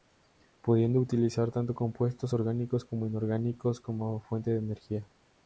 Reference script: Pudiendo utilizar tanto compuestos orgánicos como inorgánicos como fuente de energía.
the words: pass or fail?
pass